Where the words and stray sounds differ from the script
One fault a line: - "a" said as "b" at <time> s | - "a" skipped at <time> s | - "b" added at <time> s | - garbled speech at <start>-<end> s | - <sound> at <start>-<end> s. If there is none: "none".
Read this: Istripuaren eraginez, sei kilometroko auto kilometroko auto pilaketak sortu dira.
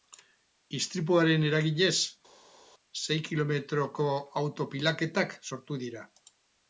- "kilometroko auto" skipped at 4.7 s